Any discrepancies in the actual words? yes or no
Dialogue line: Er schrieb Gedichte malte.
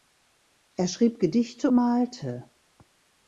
no